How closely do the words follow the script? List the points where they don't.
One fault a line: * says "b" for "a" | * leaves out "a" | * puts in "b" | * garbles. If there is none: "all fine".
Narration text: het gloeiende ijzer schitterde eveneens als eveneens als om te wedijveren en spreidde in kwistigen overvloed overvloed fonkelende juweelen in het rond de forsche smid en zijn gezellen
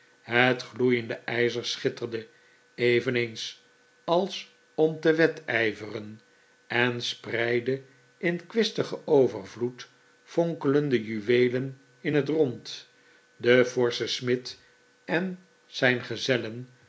* leaves out "eveneens als"
* leaves out "overvloed"